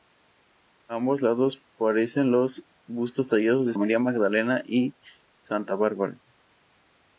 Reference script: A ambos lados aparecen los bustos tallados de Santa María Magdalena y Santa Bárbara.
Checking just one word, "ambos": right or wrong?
right